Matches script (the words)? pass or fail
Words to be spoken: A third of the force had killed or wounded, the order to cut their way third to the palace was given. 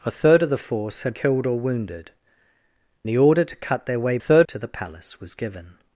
pass